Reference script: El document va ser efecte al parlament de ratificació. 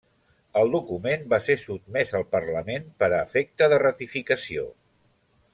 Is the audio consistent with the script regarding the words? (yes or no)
no